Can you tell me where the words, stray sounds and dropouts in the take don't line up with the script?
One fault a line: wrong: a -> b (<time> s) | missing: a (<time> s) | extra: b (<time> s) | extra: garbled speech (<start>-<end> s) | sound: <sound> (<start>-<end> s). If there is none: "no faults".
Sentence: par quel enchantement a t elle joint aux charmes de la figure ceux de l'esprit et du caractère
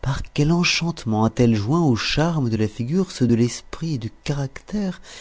no faults